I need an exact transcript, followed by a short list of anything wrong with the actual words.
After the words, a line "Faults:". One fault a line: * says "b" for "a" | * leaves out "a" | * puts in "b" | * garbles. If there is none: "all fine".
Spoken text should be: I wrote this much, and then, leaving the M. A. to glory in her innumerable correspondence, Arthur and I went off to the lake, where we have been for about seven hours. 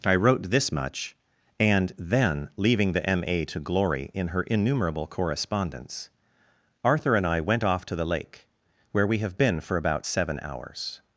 I wrote this much, and then, leaving the M. A. to glory in her innumerable correspondence, Arthur and I went off to the lake, where we have been for about seven hours.
Faults:
all fine